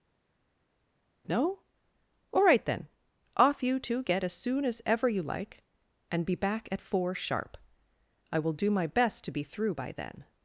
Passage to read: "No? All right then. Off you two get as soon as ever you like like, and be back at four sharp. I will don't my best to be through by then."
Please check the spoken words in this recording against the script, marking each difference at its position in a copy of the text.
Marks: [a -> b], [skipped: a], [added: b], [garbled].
"No? All right then. Off you two get as soon as ever you like [skipped: like,] and be back at four sharp. I will [don't -> do] my best to be through by then."